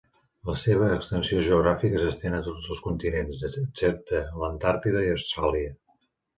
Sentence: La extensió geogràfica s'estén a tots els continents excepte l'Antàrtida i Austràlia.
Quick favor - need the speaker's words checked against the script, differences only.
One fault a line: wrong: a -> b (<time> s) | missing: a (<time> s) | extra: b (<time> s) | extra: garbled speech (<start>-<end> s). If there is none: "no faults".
extra: seva (0.6 s)